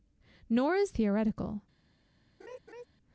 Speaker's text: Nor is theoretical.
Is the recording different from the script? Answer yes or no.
no